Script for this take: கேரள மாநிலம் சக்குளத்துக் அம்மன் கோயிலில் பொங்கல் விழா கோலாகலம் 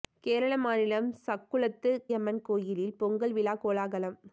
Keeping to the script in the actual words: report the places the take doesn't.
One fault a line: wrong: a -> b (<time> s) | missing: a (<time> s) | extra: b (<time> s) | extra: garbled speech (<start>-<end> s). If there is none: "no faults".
no faults